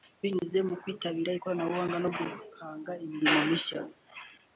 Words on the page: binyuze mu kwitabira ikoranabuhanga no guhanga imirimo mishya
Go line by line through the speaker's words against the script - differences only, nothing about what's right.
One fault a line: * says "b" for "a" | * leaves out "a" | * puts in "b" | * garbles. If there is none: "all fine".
all fine